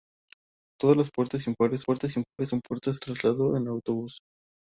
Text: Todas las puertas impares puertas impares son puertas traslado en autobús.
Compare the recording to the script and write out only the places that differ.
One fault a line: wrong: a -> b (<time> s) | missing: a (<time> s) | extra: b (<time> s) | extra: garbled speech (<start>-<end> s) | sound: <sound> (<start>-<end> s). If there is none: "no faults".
sound: dropout (2.3-2.4 s)